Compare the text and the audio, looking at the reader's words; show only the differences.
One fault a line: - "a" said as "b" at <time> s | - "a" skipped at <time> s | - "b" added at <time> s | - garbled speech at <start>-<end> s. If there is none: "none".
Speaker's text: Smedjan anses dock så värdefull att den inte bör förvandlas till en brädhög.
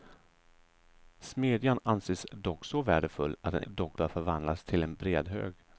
- "inte" said as "dock" at 3.6 s